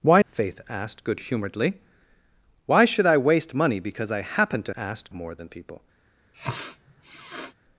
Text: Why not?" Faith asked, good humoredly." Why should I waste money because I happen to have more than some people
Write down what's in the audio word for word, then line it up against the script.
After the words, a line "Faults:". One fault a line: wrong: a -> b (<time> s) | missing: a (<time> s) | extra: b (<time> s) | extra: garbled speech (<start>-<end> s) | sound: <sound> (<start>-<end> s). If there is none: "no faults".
Why?" Faith asked, good humoredly." Why should I waste money because I happen to asked more than people
Faults:
missing: not (0.2 s)
wrong: have -> asked (4.7 s)
missing: some (5.5 s)
sound: sniff (6.3-7.5 s)